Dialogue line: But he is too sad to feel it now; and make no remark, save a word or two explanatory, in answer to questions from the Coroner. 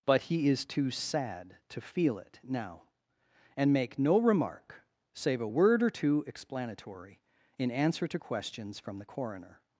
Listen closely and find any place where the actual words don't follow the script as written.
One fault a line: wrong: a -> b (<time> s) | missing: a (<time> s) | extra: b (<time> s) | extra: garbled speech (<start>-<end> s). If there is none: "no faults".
no faults